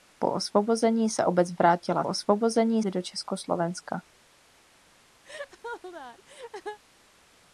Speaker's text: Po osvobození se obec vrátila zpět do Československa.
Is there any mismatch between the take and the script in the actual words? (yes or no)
yes